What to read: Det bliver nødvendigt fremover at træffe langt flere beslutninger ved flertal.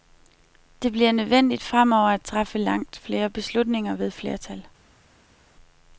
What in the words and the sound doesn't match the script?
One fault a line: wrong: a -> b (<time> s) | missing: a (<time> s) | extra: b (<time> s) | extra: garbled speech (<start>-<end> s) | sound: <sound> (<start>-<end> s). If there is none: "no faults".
no faults